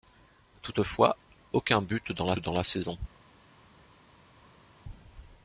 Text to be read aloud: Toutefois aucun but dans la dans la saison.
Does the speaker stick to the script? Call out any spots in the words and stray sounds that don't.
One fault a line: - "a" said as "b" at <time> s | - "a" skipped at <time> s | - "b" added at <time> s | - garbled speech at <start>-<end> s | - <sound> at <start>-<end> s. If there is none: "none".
none